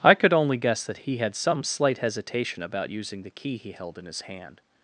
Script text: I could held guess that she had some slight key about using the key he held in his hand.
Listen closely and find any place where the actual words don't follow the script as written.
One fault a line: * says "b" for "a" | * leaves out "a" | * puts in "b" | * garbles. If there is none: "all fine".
* says "only" for "held"
* says "he" for "she"
* says "hesitation" for "key"